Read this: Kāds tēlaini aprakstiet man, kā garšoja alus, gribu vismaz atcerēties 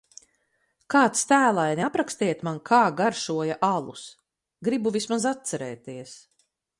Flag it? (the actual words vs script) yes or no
no